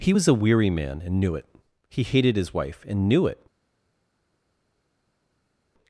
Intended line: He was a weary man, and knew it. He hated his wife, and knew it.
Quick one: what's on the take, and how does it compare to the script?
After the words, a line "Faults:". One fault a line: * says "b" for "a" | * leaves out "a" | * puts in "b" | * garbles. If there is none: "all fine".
He was a weary man, and knew it. He hated his wife, and knew it.
Faults:
all fine